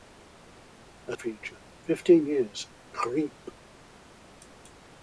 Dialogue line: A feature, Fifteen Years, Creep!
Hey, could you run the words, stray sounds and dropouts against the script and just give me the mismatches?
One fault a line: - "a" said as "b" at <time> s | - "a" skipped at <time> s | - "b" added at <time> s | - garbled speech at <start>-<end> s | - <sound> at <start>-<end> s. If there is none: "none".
none